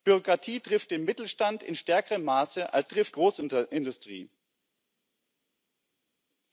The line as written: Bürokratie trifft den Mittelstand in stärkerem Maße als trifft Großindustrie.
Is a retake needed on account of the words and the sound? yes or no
no